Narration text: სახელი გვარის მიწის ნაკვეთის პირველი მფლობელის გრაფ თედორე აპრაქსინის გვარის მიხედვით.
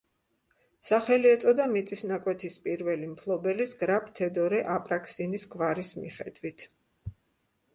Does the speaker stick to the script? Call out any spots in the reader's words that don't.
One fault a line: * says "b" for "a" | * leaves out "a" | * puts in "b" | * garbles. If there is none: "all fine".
* says "ეწოდა" for "გვარის"